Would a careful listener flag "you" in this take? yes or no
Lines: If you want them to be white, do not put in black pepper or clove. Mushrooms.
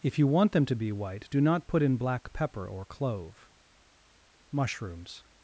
no